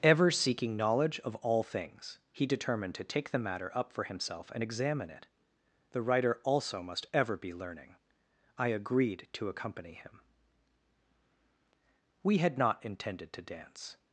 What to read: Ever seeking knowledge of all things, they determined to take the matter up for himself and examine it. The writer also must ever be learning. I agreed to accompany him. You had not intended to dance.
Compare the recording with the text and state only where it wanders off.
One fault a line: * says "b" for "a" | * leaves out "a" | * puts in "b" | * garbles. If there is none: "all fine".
* says "he" for "they"
* says "We" for "You"